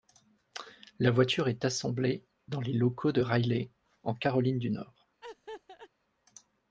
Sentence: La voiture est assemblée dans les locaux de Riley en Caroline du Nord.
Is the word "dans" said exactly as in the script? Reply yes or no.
yes